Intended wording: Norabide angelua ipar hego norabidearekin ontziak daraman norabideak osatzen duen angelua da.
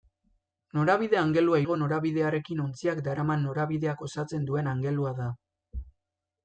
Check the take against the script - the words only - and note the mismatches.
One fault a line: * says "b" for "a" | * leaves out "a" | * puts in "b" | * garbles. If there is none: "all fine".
* leaves out "ipar"